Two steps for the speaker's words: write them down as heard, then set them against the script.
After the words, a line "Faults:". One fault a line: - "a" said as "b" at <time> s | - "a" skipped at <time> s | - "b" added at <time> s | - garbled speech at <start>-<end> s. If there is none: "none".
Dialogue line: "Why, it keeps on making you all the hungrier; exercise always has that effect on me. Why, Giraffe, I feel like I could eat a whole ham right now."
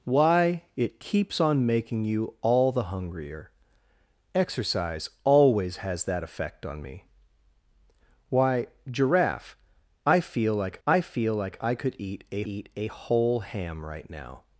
"Why, it keeps on making you all the hungrier; exercise always has that effect on me. Why, Giraffe, I feel like I feel like I could eat a eat a whole ham right now."
Faults:
- "feel like I" added at 11.0 s
- "eat a" added at 12.4 s